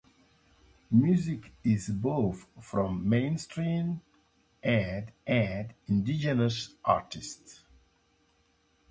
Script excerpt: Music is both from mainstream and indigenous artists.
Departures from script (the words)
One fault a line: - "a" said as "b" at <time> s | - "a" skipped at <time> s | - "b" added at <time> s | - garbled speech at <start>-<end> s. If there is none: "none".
- "and" added at 5.3 s